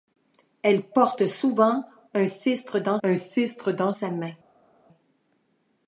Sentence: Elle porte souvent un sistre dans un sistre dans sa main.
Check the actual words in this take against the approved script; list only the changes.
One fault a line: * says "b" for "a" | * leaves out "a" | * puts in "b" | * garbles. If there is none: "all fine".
all fine